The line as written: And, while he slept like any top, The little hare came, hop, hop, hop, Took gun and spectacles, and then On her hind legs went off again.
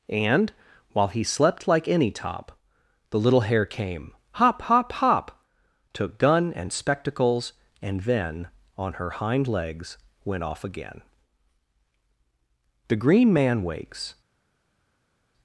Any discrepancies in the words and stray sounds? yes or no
yes